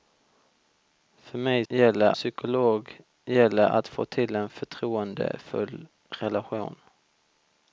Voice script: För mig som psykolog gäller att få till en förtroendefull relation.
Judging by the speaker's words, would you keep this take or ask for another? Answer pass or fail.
fail